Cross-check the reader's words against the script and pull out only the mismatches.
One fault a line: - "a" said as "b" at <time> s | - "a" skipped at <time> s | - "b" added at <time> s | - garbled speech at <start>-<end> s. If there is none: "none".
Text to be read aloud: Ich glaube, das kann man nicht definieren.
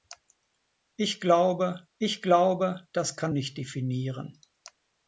- "ich glaube" added at 2.0 s
- "man" skipped at 3.3 s